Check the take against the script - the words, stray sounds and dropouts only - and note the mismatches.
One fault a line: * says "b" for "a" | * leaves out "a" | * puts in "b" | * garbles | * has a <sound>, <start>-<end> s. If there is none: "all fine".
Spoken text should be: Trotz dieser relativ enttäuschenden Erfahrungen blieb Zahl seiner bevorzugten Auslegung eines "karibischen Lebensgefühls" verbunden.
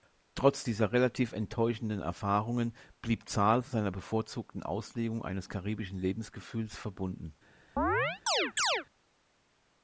* has a chirp, 7.8-8.9 s